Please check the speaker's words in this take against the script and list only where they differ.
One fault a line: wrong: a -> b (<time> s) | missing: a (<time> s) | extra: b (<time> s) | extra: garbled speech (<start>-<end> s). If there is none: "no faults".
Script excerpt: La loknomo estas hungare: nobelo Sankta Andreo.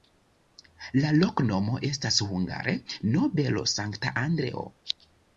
no faults